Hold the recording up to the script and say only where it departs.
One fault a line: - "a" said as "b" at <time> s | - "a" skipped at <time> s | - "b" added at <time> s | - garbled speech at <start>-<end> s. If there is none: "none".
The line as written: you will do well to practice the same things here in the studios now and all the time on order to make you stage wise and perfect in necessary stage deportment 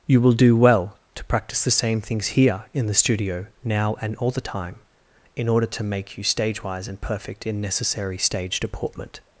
- "studios" said as "studio" at 2.9 s
- "on" said as "in" at 5.3 s